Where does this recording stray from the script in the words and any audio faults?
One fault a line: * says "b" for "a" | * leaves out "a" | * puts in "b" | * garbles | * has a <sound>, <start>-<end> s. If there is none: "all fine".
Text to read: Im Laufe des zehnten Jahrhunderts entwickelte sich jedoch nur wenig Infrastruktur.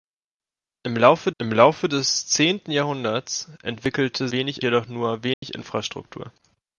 * puts in "im Laufe"
* says "wenig" for "sich"
* has a dropout, 5.3-5.4 s